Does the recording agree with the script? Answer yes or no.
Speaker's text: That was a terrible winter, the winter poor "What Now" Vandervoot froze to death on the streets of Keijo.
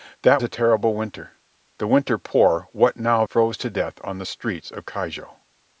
no